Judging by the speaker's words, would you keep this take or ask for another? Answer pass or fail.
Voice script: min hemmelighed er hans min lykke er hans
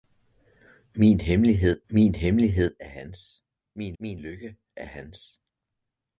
fail